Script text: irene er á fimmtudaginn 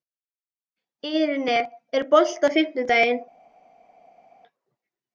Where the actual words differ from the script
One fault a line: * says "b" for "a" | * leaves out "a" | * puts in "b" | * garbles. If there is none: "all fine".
* puts in "bolti"